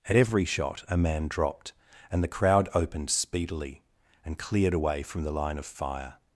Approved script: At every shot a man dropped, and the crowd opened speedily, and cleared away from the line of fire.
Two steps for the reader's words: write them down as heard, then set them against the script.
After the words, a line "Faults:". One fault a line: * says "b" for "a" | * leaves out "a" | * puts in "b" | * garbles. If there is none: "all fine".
At every shot a man dropped, and the crowd opened speedily, and cleared away from the line of fire.
Faults:
all fine